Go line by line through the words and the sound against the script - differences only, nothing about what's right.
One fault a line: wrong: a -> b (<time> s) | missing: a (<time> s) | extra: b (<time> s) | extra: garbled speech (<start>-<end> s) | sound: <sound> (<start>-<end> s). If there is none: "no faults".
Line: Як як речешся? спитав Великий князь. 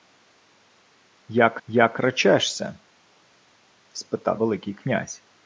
no faults